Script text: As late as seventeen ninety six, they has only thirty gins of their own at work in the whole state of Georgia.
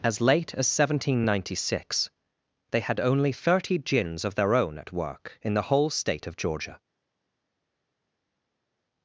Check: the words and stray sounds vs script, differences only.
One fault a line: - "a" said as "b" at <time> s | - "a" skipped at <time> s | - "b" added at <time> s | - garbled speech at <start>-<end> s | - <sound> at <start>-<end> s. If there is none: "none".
- "has" said as "had" at 2.8 s